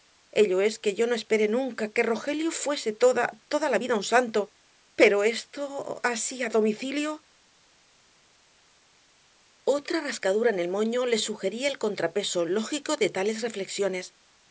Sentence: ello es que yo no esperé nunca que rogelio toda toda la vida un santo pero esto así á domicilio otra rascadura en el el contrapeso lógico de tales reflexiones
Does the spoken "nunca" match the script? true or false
true